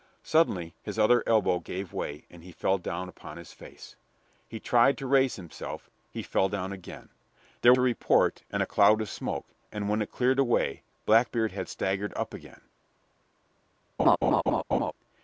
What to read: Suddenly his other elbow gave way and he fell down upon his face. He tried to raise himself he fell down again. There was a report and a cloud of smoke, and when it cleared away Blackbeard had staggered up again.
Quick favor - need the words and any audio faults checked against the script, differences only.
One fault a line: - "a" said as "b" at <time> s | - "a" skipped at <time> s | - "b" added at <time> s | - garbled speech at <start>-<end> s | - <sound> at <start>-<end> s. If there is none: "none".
- "was" skipped at 7.7 s
- laugh at 14.0-14.9 s